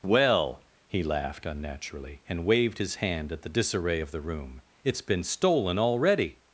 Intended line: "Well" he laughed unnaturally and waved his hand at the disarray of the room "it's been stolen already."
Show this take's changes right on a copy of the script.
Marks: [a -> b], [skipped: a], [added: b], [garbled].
"Well" he laughed unnaturally and waved his hand at the disarray of the room "it's been stolen already."